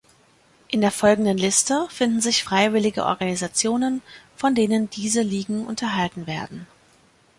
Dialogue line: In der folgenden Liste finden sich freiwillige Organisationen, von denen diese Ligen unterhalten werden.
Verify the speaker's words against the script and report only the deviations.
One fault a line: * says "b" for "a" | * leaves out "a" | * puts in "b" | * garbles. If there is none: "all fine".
all fine